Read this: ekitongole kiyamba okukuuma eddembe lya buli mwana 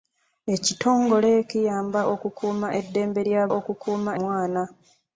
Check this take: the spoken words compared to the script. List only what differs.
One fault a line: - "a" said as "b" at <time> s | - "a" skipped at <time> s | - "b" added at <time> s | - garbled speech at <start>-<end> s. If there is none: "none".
- "buli" said as "okukuuma" at 3.6 s